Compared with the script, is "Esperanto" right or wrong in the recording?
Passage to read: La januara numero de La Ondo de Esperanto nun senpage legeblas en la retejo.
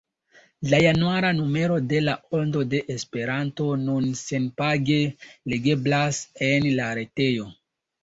right